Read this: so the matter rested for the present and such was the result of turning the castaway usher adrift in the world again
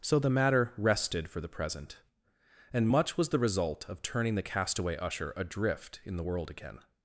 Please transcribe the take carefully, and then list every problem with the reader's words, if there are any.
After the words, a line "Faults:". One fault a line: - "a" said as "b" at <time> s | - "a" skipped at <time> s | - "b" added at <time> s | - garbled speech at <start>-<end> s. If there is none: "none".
so the matter rested for the present and much was the result of turning the castaway usher adrift in the world again
Faults:
- "such" said as "much" at 2.9 s